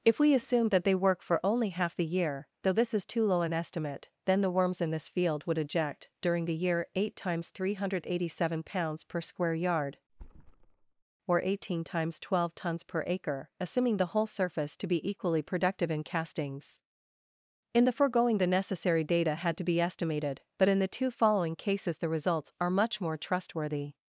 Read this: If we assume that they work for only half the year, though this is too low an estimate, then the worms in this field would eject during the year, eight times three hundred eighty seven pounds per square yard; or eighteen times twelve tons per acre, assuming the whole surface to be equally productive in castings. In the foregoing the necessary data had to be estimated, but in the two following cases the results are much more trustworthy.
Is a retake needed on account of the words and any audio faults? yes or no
yes